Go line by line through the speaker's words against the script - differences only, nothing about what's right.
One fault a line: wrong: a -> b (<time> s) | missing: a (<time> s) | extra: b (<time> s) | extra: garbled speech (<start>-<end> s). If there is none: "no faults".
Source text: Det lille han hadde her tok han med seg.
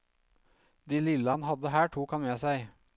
no faults